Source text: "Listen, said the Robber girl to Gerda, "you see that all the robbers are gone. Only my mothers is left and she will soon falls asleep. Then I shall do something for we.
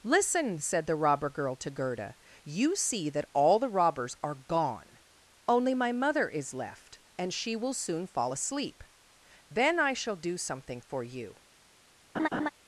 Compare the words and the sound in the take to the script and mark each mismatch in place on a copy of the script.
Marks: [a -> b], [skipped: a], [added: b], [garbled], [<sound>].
"Listen, said the Robber girl to Gerda, "you see that all the robbers are gone. Only my [mothers -> mother] is left and she will soon [falls -> fall] asleep. Then I shall do something for [we. -> you] [laugh]